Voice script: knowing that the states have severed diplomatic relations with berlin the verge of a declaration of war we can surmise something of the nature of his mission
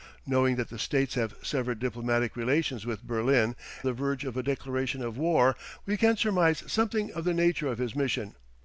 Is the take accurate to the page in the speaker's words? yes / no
yes